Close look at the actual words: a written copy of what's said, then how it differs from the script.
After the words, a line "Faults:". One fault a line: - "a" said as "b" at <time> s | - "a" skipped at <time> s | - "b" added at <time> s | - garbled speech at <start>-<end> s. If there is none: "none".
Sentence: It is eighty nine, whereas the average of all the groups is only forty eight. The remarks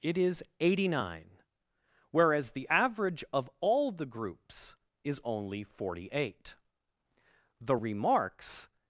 It is eighty nine, whereas the average of all the groups is only forty eight. The remarks
Faults:
none